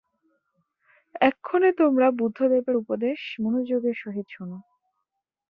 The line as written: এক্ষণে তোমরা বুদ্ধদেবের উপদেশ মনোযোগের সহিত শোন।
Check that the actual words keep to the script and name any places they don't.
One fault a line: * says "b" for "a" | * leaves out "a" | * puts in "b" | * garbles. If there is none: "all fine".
all fine